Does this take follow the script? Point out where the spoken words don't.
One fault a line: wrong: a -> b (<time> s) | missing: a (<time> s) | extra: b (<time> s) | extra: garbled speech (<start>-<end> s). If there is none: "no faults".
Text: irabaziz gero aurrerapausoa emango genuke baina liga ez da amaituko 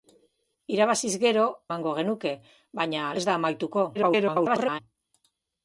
missing: aurrerapausoa (1.4 s)
missing: liga (3.1 s)
extra: garbled speech (3.9-4.8 s)